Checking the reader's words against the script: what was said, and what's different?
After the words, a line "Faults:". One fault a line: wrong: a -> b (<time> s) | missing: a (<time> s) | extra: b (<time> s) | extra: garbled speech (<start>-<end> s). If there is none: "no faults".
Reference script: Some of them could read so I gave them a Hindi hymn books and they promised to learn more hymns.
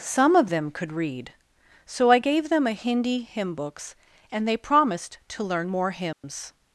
Some of them could read so I gave them a Hindi hymn books and they promised to learn more hymns.
Faults:
no faults